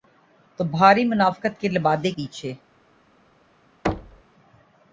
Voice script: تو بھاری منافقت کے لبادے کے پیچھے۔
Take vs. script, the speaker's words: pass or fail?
fail